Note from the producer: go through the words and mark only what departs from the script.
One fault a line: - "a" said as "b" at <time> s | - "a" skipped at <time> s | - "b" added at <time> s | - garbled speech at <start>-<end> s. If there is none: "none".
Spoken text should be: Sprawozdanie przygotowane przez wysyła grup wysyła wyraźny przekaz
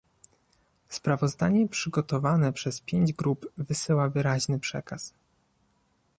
- "wysyła" said as "pięć" at 2.8 s